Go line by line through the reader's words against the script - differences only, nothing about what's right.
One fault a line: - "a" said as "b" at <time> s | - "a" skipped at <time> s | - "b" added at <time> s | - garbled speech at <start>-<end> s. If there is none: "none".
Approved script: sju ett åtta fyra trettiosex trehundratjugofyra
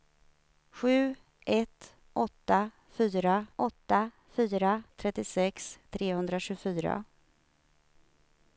- "åtta fyra" added at 3.6 s